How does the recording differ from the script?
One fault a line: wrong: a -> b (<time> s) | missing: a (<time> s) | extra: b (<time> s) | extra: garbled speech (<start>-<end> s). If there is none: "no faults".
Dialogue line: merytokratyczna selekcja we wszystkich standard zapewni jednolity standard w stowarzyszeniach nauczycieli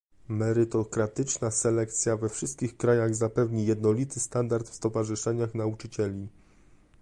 wrong: standard -> krajach (2.8 s)